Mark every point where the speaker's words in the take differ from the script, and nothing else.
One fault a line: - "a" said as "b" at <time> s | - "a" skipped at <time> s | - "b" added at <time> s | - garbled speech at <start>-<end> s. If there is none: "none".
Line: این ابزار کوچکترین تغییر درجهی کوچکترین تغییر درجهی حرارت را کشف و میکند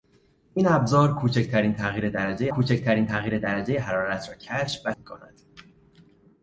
none